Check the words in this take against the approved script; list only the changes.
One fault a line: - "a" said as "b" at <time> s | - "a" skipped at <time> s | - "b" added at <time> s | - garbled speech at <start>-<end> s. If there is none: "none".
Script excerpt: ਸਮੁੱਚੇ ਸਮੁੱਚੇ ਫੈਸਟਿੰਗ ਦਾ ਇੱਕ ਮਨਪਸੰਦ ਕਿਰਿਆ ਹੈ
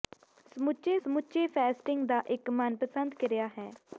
none